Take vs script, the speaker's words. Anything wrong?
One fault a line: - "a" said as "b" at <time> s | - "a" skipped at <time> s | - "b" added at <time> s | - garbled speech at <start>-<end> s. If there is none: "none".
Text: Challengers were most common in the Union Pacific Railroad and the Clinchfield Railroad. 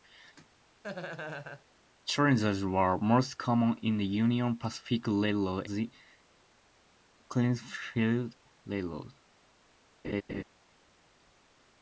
- "and" skipped at 5.7 s